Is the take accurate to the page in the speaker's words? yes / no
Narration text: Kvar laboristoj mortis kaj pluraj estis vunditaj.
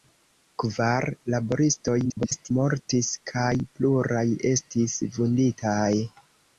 no